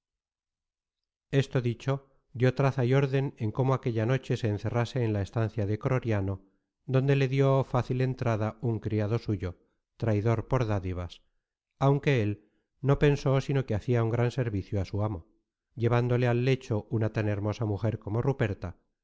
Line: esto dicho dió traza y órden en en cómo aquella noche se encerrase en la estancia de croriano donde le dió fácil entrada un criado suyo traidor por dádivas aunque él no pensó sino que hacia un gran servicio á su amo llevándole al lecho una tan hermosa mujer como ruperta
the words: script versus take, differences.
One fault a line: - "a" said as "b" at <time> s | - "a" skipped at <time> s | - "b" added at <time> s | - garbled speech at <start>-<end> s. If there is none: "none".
- "en" skipped at 3.5 s